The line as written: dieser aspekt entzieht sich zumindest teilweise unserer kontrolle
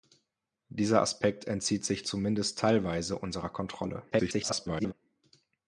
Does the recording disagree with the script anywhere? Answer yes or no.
yes